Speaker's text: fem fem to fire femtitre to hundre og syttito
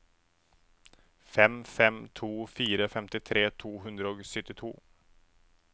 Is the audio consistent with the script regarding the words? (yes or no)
yes